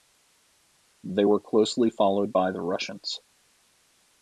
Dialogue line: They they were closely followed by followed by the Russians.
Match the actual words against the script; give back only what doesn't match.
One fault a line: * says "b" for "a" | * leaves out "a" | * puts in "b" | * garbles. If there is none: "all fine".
* leaves out "they"
* leaves out "followed by"